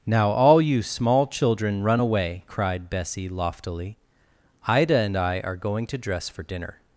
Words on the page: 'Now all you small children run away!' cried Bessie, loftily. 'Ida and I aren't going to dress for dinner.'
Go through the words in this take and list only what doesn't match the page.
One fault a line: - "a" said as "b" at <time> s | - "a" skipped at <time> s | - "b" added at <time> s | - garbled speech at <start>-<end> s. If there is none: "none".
- "aren't" said as "are" at 5.4 s